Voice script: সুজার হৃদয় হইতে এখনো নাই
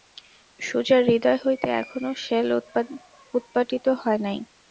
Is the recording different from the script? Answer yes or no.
yes